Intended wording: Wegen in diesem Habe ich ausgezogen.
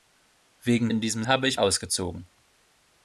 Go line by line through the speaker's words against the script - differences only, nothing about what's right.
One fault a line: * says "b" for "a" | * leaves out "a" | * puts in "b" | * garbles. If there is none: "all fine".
all fine